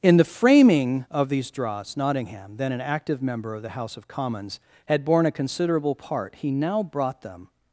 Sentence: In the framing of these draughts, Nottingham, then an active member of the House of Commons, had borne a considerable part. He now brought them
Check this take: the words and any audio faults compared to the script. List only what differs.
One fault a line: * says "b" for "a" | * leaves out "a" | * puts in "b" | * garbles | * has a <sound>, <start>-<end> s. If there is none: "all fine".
all fine